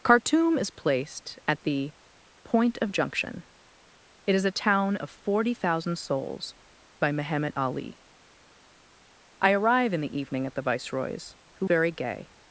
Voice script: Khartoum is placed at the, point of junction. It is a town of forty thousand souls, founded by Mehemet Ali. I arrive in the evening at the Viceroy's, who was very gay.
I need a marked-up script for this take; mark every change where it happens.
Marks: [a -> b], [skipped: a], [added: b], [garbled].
Khartoum is placed at the, point of junction. It is a town of forty thousand souls, [skipped: founded] by Mehemet Ali. I arrive in the evening at the Viceroy's, who [skipped: was] very gay.